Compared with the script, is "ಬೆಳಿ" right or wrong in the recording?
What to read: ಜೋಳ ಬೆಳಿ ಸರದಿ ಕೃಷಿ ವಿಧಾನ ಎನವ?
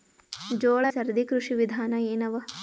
wrong